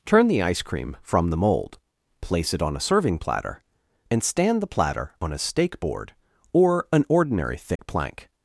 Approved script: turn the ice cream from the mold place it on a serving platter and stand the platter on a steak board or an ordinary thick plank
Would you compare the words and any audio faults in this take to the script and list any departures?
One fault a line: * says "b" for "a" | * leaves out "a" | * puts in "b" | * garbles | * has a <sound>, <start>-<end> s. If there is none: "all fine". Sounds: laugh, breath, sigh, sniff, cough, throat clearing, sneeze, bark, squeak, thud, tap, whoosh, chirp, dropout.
* has a dropout, 7.8-7.8 s